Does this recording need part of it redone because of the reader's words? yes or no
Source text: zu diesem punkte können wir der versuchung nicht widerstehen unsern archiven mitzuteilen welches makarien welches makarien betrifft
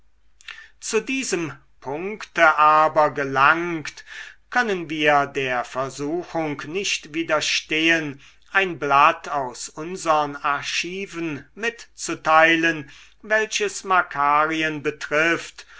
yes